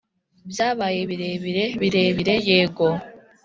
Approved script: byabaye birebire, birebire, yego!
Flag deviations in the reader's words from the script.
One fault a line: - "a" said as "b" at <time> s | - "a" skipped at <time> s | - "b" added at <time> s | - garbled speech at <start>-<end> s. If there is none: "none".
none